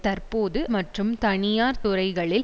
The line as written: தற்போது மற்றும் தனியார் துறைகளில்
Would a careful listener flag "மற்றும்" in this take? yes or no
no